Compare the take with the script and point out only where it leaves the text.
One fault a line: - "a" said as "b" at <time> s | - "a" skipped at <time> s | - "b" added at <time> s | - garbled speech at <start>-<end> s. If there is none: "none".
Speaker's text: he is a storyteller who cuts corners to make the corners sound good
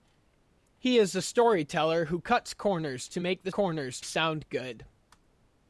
none